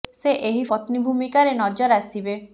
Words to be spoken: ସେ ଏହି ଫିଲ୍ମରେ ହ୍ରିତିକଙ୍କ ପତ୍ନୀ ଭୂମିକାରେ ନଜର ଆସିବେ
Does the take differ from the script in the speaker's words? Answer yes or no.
yes